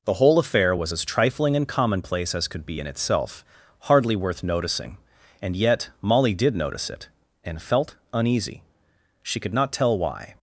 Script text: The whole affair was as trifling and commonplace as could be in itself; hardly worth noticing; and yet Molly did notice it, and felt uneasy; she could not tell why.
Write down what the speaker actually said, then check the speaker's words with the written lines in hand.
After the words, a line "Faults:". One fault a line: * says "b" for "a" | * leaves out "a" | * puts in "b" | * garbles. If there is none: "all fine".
The whole affair was as trifling and commonplace as could be in itself; hardly worth noticing; and yet Molly did notice it, and felt uneasy; she could not tell why.
Faults:
all fine